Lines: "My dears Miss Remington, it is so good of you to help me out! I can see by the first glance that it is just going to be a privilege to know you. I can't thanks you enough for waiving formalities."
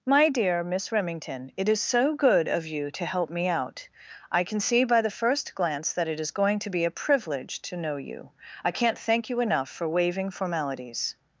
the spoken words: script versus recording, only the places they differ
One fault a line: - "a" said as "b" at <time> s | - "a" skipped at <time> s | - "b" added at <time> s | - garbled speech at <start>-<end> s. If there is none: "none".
- "dears" said as "dear" at 0.3 s
- "just" skipped at 6.3 s
- "thanks" said as "thank" at 9.0 s